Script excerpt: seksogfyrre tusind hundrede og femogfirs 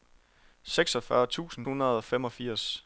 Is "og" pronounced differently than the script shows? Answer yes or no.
no